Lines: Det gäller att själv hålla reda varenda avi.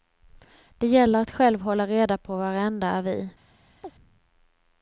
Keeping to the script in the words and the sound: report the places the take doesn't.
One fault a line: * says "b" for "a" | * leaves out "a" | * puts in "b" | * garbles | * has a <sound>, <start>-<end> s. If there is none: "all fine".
* puts in "på"
* has a chirp, 3.8-3.9 s